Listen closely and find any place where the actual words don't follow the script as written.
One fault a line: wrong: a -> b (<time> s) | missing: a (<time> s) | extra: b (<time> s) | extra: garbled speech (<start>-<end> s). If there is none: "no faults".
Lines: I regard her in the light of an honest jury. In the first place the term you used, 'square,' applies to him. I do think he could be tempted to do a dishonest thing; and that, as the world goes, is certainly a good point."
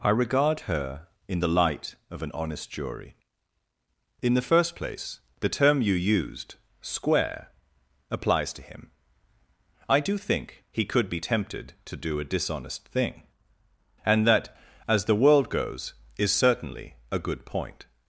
no faults